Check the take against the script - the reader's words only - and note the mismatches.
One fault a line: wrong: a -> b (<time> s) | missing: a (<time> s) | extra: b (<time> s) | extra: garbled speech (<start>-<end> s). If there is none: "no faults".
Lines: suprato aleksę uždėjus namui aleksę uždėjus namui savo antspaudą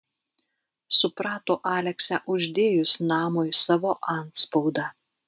missing: aleksę uždėjus namui (3.5 s)